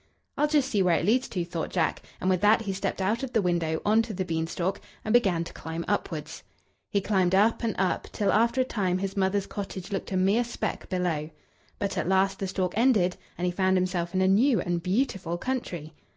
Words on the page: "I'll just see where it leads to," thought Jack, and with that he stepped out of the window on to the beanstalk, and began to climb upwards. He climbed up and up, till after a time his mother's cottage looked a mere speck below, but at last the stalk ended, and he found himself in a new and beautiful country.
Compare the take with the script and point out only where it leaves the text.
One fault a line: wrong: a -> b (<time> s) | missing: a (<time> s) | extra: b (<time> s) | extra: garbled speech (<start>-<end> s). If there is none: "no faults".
no faults